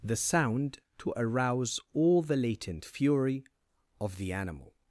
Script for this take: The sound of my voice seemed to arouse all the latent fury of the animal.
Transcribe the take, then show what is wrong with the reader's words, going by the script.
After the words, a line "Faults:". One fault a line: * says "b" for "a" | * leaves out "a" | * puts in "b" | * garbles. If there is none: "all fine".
The sound to arouse all the latent fury of the animal.
Faults:
* leaves out "of my voice seemed"